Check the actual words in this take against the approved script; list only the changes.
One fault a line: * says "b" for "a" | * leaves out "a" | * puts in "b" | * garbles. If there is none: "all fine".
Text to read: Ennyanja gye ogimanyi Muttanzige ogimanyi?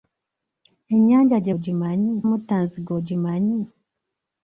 all fine